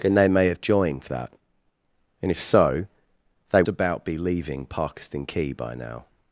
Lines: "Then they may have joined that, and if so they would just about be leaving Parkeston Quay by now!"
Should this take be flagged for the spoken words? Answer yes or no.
yes